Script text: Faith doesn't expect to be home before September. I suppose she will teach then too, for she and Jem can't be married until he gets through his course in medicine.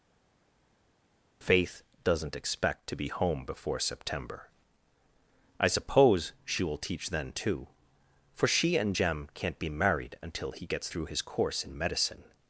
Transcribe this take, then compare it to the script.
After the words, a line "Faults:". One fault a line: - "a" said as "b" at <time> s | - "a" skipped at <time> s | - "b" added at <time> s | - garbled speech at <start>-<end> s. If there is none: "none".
Faith doesn't expect to be home before September. I suppose she will teach then too, for she and Jem can't be married until he gets through his course in medicine.
Faults:
none